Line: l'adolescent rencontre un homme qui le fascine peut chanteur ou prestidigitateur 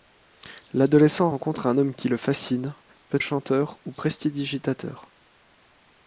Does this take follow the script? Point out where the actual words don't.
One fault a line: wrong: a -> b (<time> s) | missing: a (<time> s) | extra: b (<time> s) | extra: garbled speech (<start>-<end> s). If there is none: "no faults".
no faults